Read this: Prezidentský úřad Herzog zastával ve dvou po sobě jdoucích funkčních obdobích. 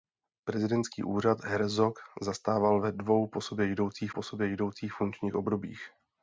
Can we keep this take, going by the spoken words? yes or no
no